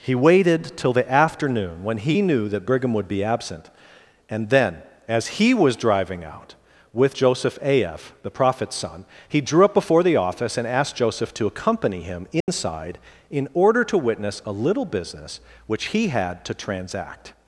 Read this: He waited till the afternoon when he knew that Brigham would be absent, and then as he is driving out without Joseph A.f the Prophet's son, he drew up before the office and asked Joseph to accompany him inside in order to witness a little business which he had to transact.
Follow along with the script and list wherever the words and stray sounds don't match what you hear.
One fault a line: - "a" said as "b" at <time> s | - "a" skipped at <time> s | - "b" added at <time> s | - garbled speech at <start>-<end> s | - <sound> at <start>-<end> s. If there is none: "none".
- "is" said as "was" at 5.5 s
- "without" said as "with" at 6.9 s
- dropout at 12.4-12.5 s